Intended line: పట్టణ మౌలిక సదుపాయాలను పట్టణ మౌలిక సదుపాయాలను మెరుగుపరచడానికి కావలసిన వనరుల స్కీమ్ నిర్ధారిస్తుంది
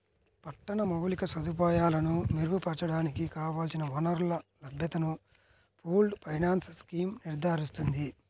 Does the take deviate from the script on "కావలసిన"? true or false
true